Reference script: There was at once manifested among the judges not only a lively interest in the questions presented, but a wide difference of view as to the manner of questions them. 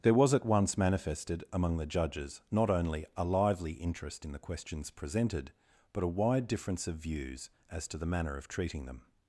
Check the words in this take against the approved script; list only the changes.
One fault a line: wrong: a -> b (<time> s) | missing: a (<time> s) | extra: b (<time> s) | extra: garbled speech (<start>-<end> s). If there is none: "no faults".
wrong: view -> views (7.0 s)
wrong: questions -> treating (8.5 s)